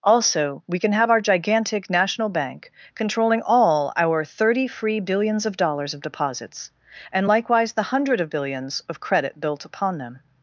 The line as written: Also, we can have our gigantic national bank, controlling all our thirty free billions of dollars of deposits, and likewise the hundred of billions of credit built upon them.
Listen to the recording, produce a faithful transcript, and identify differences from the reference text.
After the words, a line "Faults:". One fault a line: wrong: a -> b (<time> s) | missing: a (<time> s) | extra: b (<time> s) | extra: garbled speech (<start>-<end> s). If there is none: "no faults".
Also, we can have our gigantic national bank, controlling all our thirty free billions of dollars of deposits, and likewise the hundred of billions of credit built upon them.
Faults:
no faults